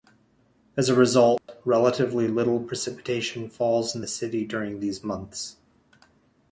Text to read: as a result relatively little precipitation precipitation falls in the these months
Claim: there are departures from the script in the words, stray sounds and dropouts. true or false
true